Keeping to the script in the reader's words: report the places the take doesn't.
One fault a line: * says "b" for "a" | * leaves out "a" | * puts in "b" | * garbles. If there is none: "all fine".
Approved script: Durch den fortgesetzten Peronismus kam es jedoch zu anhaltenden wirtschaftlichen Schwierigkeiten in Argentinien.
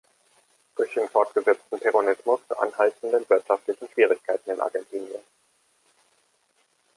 * leaves out "kam es jedoch"